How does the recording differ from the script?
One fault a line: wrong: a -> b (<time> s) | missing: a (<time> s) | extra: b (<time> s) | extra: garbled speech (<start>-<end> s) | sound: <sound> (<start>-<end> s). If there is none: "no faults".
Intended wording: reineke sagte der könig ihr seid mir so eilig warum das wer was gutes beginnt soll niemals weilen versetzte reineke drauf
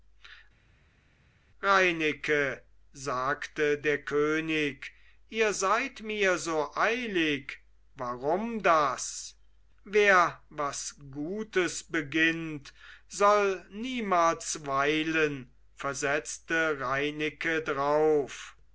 no faults